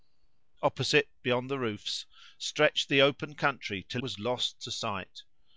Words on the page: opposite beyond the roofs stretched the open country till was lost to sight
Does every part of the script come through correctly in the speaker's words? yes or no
yes